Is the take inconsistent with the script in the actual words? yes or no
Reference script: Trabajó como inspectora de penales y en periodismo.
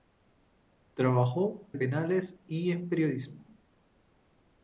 yes